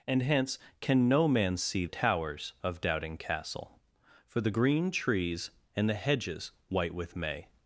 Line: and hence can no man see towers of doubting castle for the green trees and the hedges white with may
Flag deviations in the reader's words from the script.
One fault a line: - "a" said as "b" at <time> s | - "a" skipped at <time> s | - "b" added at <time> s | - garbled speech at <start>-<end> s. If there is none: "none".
none